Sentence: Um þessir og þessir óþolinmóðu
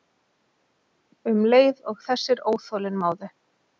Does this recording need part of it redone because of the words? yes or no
yes